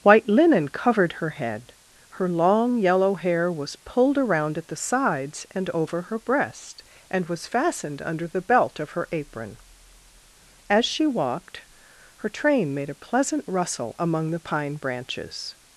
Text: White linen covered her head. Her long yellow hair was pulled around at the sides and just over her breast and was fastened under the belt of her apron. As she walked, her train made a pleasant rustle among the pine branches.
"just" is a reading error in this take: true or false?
true